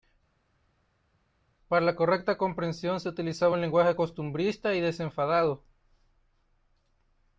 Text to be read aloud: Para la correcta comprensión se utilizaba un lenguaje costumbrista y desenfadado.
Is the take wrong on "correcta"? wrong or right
right